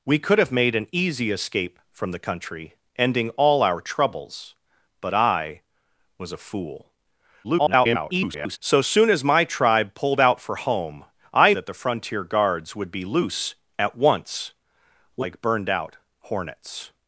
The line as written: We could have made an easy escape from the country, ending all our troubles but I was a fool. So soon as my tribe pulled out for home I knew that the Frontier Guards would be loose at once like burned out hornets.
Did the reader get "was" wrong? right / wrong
right